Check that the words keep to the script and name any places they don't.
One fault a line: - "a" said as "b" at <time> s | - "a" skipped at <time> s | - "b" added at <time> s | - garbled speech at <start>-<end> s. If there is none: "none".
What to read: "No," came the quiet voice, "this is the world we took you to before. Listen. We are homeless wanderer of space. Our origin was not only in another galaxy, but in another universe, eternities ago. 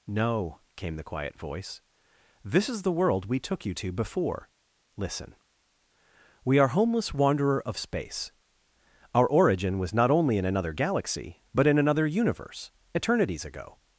none